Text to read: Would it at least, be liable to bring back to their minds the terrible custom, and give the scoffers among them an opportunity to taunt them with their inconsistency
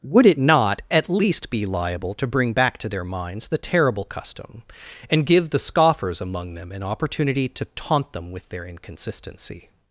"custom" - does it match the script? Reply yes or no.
yes